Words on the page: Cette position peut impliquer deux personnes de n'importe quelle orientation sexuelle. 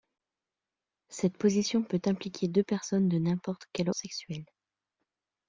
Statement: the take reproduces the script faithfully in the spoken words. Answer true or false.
false